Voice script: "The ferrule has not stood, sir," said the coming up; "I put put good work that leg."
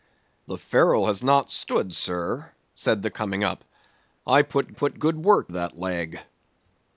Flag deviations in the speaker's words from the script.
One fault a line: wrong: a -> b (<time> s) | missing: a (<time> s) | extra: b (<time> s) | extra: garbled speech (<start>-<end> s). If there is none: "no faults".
no faults